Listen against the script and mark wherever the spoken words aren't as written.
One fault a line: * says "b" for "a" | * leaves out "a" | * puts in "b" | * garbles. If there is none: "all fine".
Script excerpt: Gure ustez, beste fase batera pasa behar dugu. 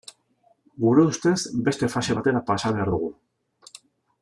all fine